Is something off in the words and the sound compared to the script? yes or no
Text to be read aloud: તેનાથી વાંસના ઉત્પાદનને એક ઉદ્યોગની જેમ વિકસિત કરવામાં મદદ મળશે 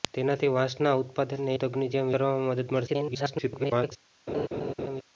yes